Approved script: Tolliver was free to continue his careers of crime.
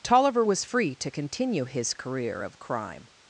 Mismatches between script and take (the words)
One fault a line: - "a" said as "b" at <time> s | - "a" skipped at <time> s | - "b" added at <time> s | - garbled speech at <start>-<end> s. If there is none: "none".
- "careers" said as "career" at 1.9 s